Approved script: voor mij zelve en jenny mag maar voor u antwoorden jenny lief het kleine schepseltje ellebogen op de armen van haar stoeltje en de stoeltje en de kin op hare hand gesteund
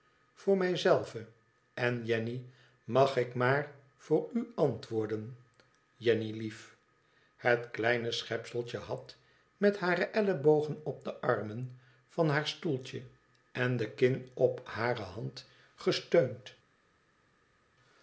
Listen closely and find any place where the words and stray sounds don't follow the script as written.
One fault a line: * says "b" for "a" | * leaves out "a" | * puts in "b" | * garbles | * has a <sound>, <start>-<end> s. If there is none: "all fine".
* puts in "ik"
* puts in "had met hare"
* leaves out "stoeltje en de"